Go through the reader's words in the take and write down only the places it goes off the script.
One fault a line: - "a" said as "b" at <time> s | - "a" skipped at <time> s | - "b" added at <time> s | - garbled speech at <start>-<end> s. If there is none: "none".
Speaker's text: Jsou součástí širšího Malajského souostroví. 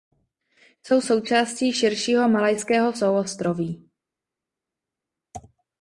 none